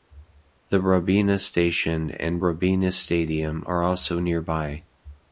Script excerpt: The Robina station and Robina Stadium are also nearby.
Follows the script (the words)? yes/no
yes